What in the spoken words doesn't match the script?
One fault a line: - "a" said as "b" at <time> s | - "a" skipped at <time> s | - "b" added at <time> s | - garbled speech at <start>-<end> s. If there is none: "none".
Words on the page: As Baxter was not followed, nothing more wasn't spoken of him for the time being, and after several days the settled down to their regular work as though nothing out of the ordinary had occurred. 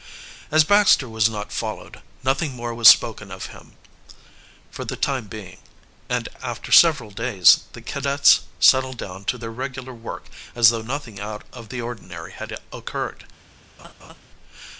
- "wasn't" said as "was" at 2.7 s
- "cadets" added at 7.8 s